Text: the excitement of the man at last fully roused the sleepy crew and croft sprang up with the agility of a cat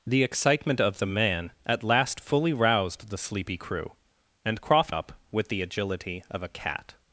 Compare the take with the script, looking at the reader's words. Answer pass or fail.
fail